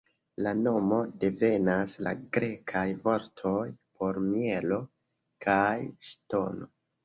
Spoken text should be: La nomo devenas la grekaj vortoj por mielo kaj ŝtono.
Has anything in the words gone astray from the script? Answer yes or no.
no